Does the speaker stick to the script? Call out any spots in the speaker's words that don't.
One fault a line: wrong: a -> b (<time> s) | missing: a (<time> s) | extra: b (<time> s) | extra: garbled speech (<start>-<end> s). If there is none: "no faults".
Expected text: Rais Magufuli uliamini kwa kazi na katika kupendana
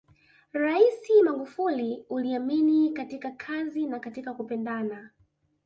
wrong: kwa -> katika (2.9 s)